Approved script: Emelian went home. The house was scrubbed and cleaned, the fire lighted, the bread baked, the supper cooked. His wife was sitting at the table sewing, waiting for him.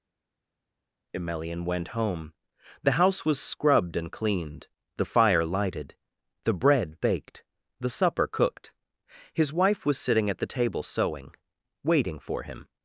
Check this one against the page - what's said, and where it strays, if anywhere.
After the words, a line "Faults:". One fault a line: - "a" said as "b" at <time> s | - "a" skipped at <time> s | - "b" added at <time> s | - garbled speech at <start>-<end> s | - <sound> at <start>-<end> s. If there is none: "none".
Emelian went home. The house was scrubbed and cleaned, the fire lighted, the bread baked, the supper cooked. His wife was sitting at the table sewing, waiting for him.
Faults:
none